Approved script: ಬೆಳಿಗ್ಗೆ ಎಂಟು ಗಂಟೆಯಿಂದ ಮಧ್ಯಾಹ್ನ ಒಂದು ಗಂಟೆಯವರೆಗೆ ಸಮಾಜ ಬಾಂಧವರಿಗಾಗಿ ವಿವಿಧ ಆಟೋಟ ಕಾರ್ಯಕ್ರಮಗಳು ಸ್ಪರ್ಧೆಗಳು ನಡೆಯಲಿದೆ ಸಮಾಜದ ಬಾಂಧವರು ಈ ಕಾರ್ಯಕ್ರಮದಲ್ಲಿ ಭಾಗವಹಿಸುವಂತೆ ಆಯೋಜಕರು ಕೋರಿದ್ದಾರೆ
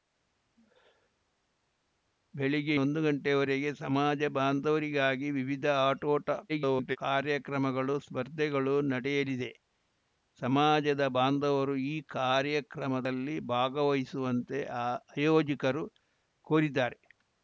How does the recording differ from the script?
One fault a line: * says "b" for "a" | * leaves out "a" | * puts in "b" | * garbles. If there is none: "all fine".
* leaves out "ಎಂಟು ಗಂಟೆಯಿಂದ ಮಧ್ಯಾಹ್ನ"
* garbles